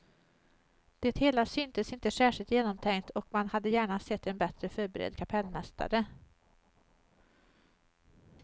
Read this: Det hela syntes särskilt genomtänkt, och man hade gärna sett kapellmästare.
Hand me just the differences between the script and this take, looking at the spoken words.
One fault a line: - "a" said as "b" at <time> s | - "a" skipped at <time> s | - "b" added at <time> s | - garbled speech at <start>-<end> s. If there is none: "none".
- "inte" added at 1.9 s
- "en bättre förberedd" added at 4.3 s